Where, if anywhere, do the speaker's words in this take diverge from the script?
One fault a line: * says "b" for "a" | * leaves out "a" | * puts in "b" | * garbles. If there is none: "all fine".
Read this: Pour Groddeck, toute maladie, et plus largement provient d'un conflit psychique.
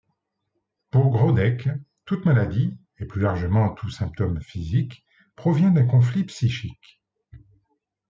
* puts in "tout symptôme physique"